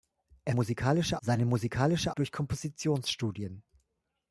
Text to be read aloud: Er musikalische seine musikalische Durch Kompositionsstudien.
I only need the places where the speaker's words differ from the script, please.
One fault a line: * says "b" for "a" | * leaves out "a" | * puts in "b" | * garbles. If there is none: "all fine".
all fine